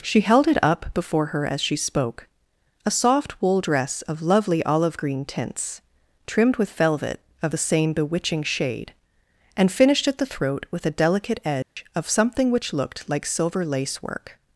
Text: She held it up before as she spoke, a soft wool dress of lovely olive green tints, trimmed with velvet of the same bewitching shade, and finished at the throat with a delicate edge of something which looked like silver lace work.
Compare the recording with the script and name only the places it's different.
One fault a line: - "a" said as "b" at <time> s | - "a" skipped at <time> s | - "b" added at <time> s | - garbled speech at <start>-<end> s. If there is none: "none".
- "her" added at 1.3 s